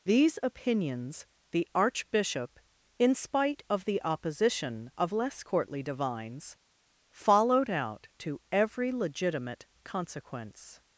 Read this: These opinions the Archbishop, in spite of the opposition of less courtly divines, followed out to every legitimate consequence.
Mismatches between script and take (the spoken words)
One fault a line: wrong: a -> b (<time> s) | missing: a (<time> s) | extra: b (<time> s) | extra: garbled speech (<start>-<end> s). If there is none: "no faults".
no faults